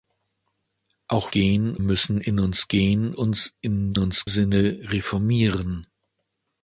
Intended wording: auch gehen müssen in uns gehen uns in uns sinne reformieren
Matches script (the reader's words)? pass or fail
pass